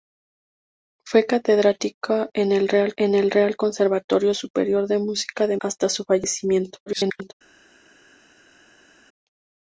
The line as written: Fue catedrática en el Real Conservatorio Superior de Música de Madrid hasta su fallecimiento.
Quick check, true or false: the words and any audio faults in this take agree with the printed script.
false